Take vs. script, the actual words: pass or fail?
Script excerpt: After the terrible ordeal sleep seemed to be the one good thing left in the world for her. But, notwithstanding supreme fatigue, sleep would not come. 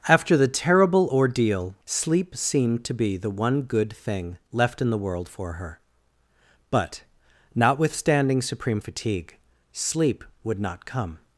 pass